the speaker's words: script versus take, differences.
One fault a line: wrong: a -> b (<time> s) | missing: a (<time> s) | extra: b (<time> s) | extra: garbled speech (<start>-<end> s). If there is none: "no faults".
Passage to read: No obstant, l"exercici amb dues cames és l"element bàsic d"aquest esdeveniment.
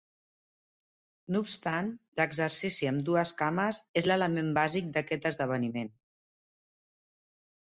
no faults